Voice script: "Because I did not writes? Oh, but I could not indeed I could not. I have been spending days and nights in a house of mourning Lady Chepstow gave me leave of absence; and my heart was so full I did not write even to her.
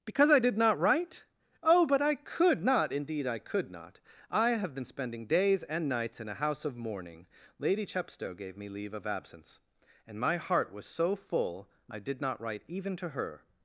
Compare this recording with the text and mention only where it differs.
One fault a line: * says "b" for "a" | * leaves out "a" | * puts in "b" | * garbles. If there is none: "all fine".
* says "write" for "writes"